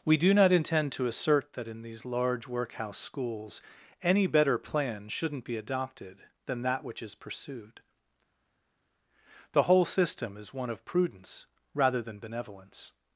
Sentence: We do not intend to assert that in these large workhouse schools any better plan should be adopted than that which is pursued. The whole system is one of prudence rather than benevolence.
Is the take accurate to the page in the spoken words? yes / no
no